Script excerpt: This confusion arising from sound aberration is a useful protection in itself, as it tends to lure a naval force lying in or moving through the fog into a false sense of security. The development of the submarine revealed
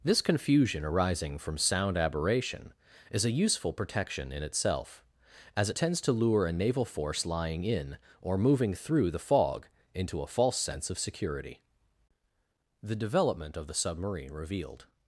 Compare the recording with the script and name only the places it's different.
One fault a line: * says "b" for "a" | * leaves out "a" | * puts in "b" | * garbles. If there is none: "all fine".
all fine